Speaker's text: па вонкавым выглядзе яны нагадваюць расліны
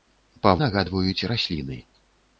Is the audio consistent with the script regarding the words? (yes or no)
no